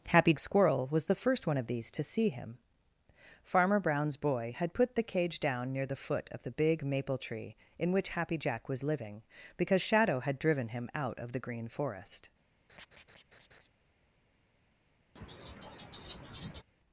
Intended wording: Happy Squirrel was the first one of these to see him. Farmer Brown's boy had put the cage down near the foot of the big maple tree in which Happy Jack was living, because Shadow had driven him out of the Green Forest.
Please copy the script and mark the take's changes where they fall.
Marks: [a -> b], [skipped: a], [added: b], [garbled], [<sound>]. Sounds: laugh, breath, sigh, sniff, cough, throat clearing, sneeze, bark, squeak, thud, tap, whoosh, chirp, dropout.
Happy Squirrel was the first one of these to see him. Farmer Brown's boy had put the cage down near the foot of the big maple tree in which Happy Jack was living, because Shadow had driven him out of the Green Forest. [laugh] [laugh]